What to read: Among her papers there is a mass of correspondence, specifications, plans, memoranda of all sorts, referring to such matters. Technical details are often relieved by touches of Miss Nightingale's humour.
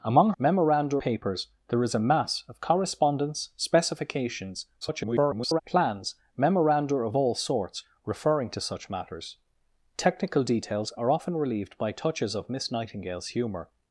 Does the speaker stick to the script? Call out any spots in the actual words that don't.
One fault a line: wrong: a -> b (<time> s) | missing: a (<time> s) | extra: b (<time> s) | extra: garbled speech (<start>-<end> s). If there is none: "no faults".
wrong: her -> memoranda (0.4 s)
extra: garbled speech (4.8-5.6 s)